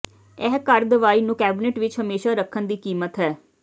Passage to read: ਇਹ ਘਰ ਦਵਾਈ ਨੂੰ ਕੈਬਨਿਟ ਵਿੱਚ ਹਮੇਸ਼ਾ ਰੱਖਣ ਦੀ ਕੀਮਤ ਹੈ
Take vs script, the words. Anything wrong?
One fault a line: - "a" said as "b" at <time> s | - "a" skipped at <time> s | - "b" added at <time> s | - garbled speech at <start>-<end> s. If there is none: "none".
none